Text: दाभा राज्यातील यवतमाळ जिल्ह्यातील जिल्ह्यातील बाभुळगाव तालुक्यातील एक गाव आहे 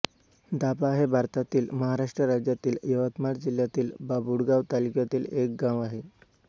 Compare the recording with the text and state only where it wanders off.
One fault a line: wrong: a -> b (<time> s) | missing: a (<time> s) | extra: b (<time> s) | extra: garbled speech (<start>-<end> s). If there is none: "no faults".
extra: हे भारतातील महाराष्ट्र (0.9 s)
missing: जिल्ह्यातील (3.9 s)